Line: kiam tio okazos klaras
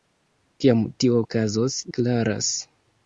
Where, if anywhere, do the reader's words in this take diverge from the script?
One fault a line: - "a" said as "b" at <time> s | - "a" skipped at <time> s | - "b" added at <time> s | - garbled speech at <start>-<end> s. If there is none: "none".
none